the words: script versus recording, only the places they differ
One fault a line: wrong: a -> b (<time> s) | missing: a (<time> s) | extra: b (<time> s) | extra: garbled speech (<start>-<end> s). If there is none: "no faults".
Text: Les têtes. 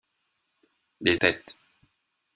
no faults